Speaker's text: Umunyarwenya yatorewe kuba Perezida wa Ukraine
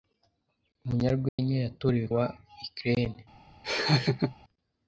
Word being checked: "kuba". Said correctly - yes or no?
no